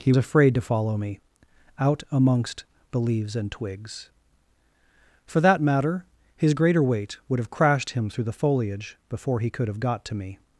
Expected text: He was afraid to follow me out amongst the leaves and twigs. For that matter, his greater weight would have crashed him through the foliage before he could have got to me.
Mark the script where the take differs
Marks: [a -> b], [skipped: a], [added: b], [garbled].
He [skipped: was] afraid to follow me out amongst the leaves and twigs. For that matter, his greater weight would have crashed him through the foliage before he could have got to me.